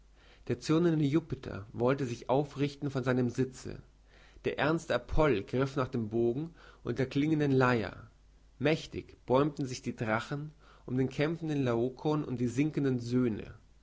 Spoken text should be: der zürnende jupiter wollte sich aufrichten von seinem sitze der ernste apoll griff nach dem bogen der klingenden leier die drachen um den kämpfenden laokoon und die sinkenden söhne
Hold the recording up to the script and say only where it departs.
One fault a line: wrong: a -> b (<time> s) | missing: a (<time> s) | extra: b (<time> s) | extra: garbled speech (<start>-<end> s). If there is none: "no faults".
extra: und (6.8 s)
extra: mächtig bäumten sich (8.6 s)